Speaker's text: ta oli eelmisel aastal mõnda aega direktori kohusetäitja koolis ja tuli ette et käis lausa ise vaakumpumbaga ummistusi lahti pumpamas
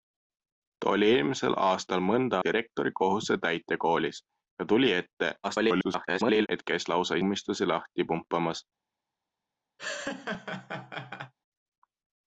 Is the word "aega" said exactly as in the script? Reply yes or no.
no